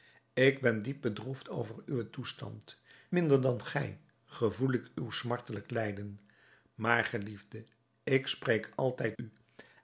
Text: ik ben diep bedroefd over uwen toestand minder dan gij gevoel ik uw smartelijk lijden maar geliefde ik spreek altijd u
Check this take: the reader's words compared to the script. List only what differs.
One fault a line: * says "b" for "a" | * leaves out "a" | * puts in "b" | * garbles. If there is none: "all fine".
all fine